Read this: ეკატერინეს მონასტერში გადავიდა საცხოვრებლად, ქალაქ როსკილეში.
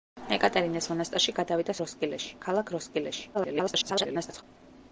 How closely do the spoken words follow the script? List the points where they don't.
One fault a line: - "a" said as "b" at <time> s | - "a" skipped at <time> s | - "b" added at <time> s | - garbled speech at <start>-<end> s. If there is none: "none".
- "საცხოვრებლად" said as "როსკილეში" at 1.8 s
- garbled speech at 3.3-4.4 s